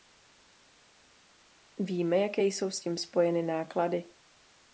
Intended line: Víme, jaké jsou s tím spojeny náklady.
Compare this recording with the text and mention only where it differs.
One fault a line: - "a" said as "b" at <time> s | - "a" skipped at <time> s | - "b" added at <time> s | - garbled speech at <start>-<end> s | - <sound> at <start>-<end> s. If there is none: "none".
none